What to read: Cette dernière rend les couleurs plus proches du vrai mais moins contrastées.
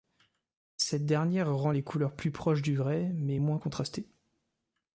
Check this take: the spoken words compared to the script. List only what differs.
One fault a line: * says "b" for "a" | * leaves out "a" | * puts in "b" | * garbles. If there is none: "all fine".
all fine